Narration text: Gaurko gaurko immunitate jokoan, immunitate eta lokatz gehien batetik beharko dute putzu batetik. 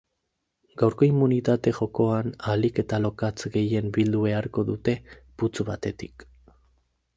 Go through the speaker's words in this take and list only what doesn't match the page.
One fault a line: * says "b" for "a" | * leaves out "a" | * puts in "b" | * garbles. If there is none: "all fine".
* leaves out "gaurko"
* says "ahalik" for "immunitate"
* says "bildu" for "batetik"